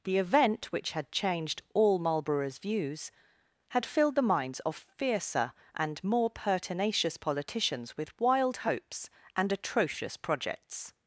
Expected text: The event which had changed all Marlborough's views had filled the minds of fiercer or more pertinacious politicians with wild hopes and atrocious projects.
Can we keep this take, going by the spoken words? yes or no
no